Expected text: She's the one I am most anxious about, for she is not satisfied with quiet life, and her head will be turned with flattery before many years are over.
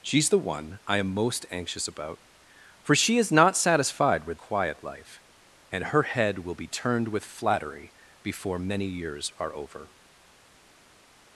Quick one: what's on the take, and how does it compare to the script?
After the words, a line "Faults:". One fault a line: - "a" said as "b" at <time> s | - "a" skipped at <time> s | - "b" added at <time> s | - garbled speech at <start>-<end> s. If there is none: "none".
She's the one I am most anxious about, for she is not satisfied with quiet life, and her head will be turned with flattery before many years are over.
Faults:
none